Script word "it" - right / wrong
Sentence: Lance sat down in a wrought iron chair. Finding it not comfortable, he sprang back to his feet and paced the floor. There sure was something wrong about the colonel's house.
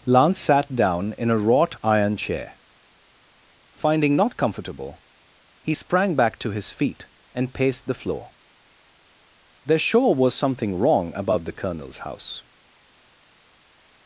wrong